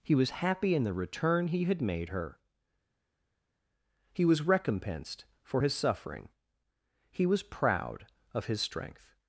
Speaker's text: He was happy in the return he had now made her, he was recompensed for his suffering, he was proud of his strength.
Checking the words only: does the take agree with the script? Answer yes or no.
no